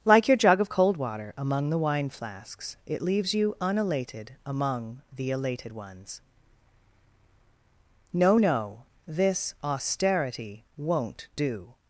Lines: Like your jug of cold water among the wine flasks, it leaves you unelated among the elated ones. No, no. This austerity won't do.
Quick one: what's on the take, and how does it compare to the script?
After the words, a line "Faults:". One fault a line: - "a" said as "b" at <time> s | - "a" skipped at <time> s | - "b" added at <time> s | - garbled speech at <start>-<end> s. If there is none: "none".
Like your jug of cold water among the wine flasks, it leaves you unelated among the elated ones. No, no. This austerity won't do.
Faults:
none